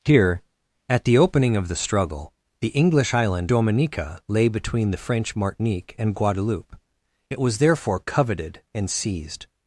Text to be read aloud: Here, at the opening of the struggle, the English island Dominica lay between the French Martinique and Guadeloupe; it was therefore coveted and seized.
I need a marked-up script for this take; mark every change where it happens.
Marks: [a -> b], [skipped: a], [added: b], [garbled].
Here, at the opening of the struggle, the English island Dominica lay between the French Martinique and Guadeloupe; it was therefore coveted and seized.